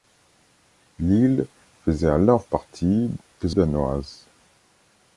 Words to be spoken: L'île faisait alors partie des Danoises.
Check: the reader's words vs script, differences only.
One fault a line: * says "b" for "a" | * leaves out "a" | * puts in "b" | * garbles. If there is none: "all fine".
all fine